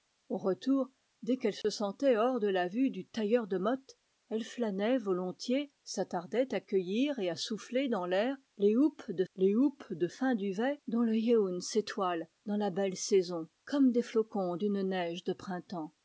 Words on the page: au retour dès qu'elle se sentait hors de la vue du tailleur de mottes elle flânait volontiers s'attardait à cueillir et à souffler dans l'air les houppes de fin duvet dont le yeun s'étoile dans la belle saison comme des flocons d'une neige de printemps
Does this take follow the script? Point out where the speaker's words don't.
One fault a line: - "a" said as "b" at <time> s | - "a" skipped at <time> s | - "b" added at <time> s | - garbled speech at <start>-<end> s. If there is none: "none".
- "les houppes de" added at 9.4 s